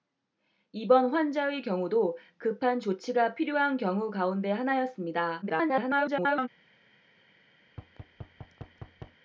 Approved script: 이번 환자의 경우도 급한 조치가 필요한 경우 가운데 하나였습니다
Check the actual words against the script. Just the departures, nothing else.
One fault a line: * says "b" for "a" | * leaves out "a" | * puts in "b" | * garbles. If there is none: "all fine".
* garbles